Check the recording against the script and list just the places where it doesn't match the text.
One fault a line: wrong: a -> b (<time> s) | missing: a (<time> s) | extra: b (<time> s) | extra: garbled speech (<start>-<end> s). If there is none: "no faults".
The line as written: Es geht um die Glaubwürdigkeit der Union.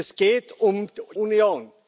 missing: die Glaubwürdigkeit der (0.9 s)